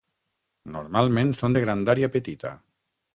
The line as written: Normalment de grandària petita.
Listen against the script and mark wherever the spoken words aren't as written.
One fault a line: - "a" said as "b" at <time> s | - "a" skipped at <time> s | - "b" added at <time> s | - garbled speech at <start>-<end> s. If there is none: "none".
- "són" added at 1.4 s